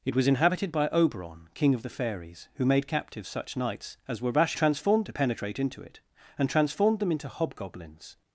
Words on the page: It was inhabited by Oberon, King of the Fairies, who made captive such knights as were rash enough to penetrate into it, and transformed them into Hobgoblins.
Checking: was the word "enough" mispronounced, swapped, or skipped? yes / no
yes